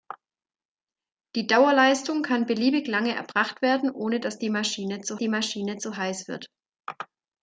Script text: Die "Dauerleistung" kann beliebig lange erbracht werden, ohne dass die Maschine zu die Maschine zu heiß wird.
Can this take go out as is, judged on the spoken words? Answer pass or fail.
pass